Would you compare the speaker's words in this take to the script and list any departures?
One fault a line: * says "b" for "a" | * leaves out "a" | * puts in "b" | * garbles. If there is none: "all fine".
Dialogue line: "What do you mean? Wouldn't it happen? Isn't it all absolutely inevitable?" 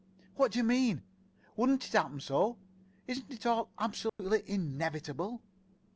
* puts in "so"